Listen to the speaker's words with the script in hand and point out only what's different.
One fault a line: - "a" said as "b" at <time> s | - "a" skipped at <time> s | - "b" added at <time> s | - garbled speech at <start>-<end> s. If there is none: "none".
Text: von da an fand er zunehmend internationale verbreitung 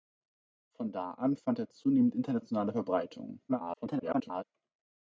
- garbled speech at 3.5-4.4 s